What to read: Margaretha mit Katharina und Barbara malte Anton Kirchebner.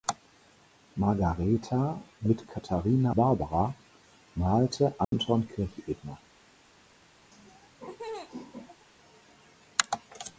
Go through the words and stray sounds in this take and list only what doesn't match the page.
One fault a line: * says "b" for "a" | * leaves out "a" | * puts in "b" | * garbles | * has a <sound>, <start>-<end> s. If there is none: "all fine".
* leaves out "und"
* has a dropout, 5.0-5.1 s
* has a laugh, 7.3-8.9 s